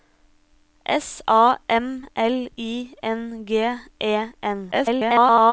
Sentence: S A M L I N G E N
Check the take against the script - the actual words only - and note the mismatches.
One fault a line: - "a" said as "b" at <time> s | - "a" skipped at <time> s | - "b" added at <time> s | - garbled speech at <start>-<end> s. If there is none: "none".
- garbled speech at 4.7-5.5 s